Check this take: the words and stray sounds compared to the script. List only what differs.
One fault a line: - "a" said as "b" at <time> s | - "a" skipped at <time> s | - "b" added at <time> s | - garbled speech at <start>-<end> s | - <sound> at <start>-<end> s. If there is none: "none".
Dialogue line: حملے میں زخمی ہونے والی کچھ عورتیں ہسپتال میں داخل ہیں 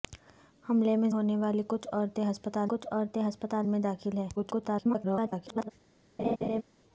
- "زخمی" skipped at 1.1 s
- "کچھ عورتیں ہسپتال" added at 2.7 s
- garbled speech at 4.4-5.7 s
- laugh at 6.2-6.6 s